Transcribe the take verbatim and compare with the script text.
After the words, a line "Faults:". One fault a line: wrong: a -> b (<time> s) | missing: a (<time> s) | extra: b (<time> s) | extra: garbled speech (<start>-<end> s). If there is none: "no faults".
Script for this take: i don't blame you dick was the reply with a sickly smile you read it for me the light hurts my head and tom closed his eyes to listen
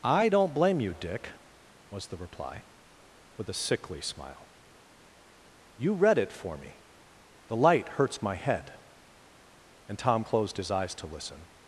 i don't blame you dick was the reply with a sickly smile you read it for me the light hurts my head and tom closed his eyes to listen
Faults:
no faults